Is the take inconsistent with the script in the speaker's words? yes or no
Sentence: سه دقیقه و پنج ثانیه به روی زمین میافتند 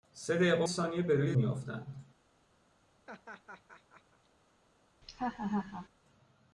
yes